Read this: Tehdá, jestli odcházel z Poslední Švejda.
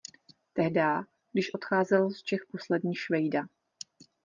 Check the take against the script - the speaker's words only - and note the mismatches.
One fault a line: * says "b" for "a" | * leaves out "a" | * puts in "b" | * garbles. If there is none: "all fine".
* says "když" for "jestli"
* puts in "Čech"